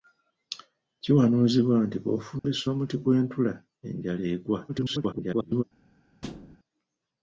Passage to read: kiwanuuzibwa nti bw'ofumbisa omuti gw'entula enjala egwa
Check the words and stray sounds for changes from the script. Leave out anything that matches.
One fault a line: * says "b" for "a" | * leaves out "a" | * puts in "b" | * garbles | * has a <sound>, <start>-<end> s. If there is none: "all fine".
* has a dropout, 2.4-2.4 s
* garbles
* has a thud, 6.2-6.6 s